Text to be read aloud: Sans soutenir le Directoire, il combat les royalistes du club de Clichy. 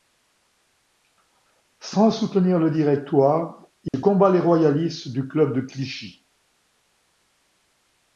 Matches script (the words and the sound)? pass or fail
fail